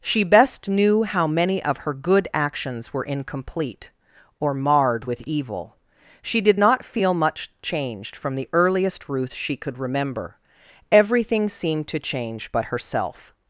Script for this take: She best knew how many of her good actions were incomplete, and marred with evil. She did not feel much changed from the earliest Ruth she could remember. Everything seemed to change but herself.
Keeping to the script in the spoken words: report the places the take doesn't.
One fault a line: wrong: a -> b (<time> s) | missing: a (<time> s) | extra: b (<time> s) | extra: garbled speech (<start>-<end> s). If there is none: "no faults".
wrong: and -> or (4.4 s)